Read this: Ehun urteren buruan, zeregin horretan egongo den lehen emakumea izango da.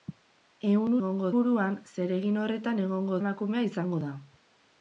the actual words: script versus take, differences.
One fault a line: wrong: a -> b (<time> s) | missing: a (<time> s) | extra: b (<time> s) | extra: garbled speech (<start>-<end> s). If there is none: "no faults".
wrong: urteren -> egongo (1.0 s)
missing: den lehen (3.2 s)